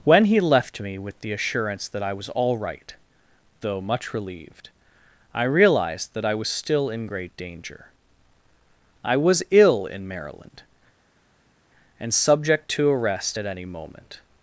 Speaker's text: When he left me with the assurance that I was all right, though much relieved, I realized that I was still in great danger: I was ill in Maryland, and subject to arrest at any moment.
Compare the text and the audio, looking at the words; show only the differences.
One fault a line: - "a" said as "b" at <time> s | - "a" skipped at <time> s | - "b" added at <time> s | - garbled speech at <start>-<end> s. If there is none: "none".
none